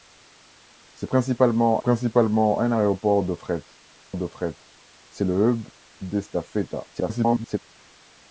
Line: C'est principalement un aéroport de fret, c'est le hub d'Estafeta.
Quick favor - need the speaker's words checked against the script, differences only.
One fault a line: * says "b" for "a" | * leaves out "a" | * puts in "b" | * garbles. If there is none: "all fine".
* puts in "principalement"
* puts in "de fret"
* garbles